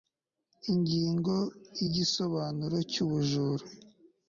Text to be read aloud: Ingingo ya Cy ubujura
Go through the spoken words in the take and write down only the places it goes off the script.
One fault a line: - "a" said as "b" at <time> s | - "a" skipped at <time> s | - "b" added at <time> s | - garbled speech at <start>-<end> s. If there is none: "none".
- "Igisobanuro" added at 1.8 s